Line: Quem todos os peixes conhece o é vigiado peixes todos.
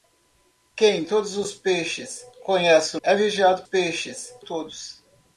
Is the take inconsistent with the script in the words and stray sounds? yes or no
no